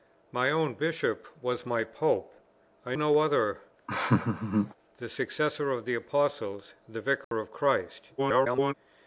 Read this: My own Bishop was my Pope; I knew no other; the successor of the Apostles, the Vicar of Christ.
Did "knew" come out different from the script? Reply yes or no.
yes